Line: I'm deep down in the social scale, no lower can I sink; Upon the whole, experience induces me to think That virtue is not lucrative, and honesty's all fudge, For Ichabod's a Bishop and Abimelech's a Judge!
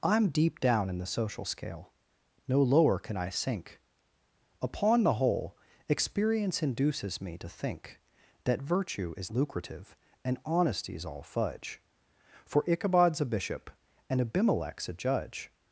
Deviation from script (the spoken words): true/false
true